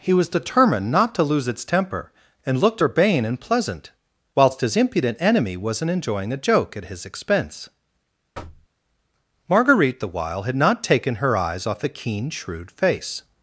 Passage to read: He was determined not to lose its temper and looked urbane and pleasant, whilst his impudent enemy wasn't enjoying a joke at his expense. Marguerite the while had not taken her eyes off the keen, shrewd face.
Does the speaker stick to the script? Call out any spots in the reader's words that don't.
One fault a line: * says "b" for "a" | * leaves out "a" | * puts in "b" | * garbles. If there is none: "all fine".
all fine